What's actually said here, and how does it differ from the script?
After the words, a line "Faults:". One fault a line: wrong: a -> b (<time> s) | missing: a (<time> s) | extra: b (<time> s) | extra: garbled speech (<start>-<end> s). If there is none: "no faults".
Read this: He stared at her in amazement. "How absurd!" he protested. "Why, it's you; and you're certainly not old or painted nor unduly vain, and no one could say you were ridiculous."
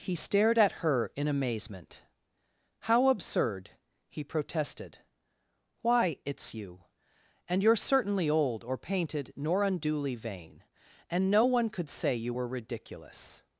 He stared at her in amazement. "How absurd!" he protested. "Why, it's you; and you're certainly old or painted nor unduly vain, and no one could say you were ridiculous."
Faults:
missing: not (8.3 s)